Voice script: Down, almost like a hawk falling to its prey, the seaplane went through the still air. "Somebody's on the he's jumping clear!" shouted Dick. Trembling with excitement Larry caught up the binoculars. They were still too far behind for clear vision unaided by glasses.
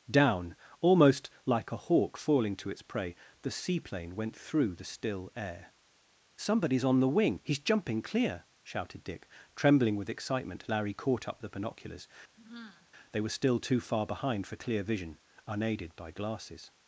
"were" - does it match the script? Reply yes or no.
yes